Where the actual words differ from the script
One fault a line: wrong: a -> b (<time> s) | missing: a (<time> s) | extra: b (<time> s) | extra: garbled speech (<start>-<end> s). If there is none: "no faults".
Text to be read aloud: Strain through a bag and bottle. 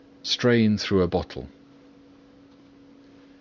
missing: bag and (1.1 s)